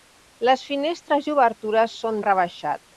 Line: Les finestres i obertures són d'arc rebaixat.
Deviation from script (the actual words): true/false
true